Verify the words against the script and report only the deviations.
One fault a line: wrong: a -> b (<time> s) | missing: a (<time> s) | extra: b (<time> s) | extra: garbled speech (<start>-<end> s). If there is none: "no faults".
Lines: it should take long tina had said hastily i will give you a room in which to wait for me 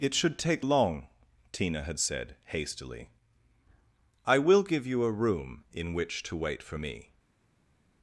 no faults